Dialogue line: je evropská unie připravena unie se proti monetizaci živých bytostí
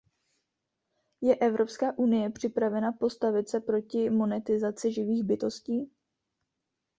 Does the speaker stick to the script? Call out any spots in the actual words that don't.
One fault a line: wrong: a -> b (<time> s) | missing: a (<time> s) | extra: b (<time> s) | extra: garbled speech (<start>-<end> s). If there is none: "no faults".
wrong: unie -> postavit (2.9 s)